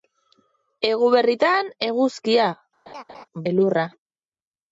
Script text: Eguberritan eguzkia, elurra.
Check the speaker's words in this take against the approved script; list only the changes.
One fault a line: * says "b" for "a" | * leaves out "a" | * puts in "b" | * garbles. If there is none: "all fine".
all fine